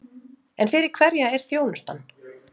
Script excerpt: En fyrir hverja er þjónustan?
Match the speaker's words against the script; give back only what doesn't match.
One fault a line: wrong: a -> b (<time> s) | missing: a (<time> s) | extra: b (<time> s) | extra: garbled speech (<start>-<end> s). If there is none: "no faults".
no faults